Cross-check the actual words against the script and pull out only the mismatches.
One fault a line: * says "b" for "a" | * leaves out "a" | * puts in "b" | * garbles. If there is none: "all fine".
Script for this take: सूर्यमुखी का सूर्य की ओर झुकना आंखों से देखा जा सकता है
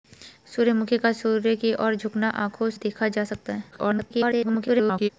* leaves out "से"
* garbles